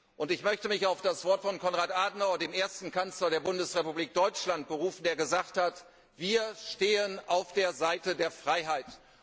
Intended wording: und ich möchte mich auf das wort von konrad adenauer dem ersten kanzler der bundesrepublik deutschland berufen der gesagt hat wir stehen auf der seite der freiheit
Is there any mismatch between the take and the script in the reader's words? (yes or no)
no